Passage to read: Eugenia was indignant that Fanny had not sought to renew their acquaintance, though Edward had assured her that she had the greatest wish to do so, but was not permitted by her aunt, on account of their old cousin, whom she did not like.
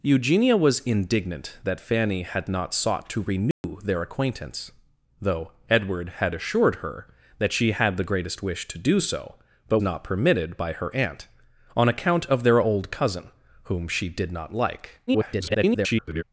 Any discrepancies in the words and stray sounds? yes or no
yes